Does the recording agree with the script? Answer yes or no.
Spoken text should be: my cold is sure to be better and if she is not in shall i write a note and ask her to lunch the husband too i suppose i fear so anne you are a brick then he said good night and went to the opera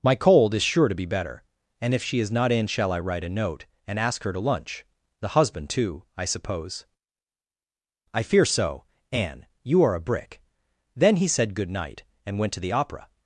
yes